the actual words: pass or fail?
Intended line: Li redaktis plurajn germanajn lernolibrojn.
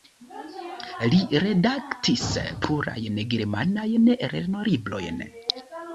pass